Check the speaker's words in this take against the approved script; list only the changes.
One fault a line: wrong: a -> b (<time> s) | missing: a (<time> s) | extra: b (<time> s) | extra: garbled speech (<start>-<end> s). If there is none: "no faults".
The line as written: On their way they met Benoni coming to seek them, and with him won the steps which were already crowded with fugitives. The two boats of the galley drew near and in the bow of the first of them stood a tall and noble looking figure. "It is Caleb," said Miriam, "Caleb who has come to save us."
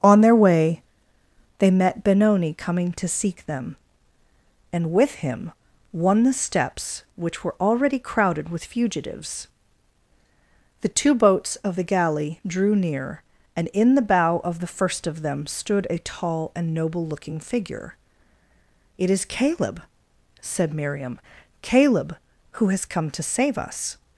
no faults